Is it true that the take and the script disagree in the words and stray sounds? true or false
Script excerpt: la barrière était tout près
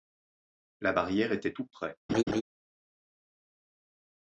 true